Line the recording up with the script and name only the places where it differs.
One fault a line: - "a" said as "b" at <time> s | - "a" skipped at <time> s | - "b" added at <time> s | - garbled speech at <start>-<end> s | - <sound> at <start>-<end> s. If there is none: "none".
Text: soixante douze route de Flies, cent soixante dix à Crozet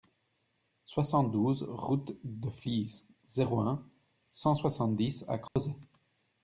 - "zéro un" added at 3.3 s
- dropout at 5.5-5.6 s